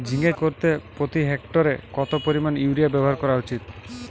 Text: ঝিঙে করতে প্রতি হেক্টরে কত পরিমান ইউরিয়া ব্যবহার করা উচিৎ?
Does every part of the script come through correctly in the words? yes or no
yes